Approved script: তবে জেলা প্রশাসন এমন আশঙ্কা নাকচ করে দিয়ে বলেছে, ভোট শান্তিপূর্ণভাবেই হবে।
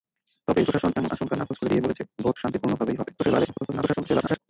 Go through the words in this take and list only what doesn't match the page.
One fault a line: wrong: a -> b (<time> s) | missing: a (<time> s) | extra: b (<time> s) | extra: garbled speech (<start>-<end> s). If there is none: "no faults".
missing: জেলা (0.6 s)
extra: garbled speech (3.2-4.4 s)